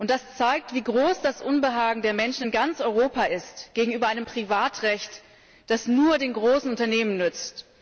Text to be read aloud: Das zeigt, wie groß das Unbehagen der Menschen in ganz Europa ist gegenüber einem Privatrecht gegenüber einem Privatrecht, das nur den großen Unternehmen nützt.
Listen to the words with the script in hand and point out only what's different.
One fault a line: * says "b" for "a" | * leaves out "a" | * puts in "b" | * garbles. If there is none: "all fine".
* leaves out "gegenüber einem Privatrecht"